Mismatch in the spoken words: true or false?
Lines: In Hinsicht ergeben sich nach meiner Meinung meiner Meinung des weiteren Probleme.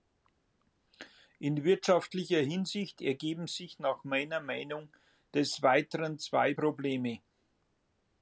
true